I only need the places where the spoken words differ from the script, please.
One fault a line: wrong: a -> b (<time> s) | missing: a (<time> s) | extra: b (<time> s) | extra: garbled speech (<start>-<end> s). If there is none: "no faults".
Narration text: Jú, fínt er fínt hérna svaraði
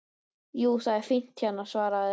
wrong: fínt -> það (0.9 s)